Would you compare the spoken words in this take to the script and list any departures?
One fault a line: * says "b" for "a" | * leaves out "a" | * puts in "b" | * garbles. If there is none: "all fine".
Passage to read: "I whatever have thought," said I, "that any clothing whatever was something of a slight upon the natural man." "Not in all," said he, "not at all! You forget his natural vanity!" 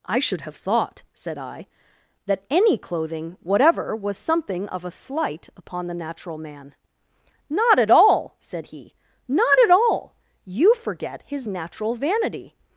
* says "should" for "whatever"
* says "at" for "in"